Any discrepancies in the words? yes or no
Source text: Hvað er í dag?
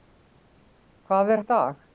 no